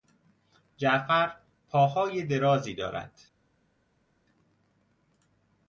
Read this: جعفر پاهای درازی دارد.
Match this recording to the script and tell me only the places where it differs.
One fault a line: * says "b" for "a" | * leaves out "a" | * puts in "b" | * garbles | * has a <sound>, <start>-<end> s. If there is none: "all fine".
all fine